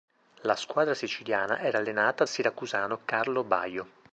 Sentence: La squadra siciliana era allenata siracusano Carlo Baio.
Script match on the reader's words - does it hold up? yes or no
yes